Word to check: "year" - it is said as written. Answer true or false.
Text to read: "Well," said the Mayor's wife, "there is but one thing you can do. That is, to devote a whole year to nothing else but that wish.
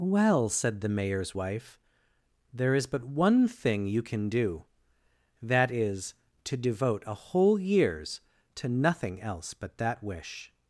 false